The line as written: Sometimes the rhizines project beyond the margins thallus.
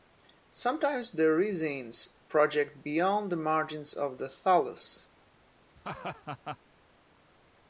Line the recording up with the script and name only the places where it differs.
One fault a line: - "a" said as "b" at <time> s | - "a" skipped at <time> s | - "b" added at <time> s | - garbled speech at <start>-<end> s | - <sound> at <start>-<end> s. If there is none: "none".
- "of the" added at 3.9 s
- laugh at 5.8-6.6 s